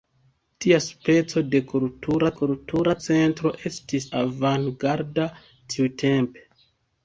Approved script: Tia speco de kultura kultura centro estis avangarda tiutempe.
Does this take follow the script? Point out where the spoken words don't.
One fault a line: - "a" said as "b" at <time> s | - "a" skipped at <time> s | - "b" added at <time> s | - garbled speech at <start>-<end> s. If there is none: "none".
none